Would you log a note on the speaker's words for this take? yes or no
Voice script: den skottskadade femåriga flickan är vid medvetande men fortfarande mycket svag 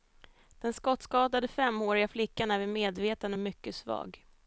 yes